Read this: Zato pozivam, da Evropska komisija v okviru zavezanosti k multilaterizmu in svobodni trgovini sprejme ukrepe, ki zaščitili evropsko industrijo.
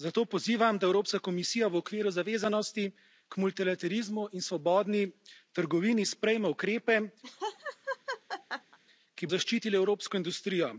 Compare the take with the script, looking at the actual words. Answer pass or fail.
pass